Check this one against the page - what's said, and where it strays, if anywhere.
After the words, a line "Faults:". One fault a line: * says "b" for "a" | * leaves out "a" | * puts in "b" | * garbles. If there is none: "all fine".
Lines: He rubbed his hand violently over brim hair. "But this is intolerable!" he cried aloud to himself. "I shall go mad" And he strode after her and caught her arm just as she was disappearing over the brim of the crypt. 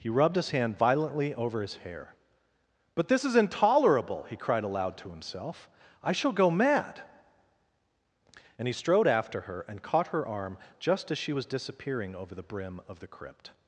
He rubbed his hand violently over his hair. "But this is intolerable!" he cried aloud to himself. "I shall go mad" And he strode after her and caught her arm just as she was disappearing over the brim of the crypt.
Faults:
* says "his" for "brim"